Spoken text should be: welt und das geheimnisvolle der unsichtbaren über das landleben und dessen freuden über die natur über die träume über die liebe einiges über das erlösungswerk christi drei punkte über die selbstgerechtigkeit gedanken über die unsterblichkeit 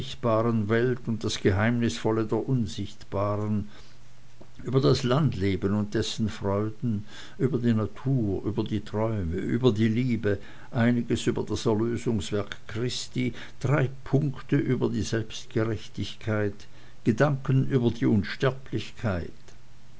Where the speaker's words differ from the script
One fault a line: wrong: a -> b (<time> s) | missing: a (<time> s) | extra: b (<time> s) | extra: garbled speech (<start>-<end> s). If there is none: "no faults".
no faults